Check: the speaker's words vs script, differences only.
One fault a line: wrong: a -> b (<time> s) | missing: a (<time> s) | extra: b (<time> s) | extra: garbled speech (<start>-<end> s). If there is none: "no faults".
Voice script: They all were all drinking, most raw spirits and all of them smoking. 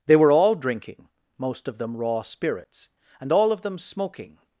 missing: all (0.1 s)
extra: of them (1.7 s)